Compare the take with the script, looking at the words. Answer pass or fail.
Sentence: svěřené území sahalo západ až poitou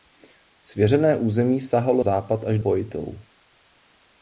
pass